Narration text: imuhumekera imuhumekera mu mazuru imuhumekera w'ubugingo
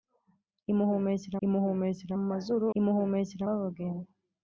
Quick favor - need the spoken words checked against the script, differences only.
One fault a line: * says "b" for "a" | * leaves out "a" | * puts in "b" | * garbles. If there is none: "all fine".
all fine